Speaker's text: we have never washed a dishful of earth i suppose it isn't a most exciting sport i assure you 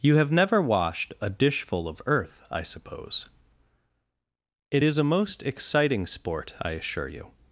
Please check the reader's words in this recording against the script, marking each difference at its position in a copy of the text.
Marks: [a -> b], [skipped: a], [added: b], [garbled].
[we -> you] have never washed a dishful of earth i suppose it [isn't -> is] a most exciting sport i assure you